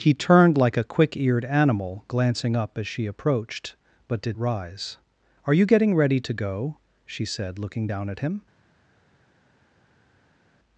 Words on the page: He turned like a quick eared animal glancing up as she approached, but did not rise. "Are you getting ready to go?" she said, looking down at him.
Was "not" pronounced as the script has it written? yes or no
no